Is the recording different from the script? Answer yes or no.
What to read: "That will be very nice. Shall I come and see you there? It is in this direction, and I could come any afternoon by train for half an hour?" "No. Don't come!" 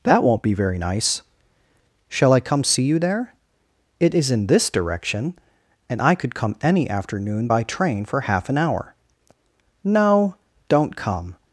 yes